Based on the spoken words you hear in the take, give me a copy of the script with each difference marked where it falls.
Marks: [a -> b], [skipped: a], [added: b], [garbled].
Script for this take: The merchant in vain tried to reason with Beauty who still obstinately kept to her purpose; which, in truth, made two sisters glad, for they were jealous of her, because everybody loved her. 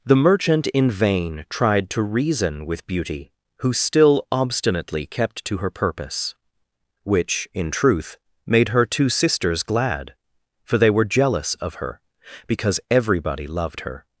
The merchant in vain tried to reason with Beauty who still obstinately kept to her purpose; which, in truth, made [added: her] two sisters glad, for they were jealous of her, because everybody loved her.